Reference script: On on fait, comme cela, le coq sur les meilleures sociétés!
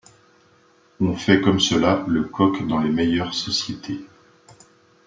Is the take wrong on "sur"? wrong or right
wrong